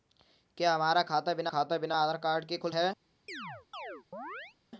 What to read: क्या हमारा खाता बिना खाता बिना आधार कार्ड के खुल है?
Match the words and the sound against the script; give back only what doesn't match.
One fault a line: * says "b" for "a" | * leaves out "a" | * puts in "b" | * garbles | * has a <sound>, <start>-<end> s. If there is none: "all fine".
* has a chirp, 3.3-4.6 s